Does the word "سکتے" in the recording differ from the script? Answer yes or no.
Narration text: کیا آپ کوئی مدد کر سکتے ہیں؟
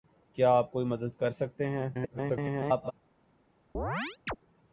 no